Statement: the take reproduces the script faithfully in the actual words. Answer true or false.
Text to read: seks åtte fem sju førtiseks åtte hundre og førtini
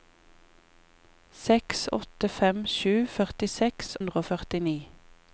false